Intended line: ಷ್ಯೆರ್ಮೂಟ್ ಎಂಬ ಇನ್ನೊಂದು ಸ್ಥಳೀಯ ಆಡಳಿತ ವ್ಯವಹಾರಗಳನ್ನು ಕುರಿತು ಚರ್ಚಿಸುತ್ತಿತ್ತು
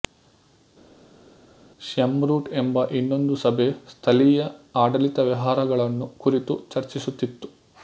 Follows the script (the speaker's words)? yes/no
no